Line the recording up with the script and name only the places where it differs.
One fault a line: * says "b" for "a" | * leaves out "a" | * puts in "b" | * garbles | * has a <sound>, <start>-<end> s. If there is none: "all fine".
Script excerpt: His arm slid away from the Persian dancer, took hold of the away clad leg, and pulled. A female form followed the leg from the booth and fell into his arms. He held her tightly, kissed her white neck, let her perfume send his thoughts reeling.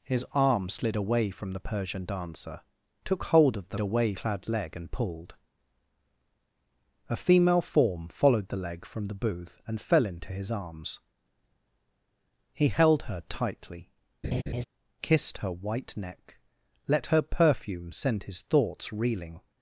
* has a laugh, 14.2-14.6 s